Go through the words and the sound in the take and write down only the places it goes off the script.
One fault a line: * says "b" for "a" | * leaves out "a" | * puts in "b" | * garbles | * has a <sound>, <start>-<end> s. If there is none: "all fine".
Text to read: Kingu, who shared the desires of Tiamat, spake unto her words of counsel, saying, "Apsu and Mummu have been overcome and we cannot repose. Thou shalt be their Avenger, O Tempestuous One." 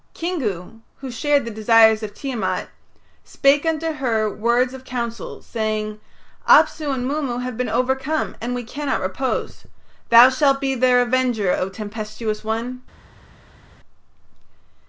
all fine